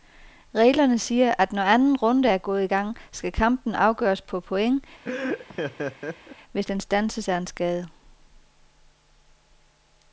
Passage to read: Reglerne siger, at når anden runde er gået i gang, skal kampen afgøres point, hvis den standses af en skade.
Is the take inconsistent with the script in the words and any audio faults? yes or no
yes